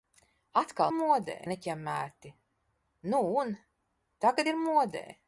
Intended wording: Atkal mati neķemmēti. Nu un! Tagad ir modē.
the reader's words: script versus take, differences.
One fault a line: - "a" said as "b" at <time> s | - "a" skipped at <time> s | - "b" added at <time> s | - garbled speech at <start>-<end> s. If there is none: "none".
- "mati" said as "modē" at 0.9 s